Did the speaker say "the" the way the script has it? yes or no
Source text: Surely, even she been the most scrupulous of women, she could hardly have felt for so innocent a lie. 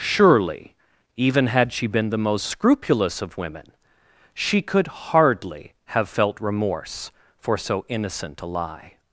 yes